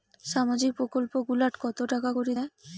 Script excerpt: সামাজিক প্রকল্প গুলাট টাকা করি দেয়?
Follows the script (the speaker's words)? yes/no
no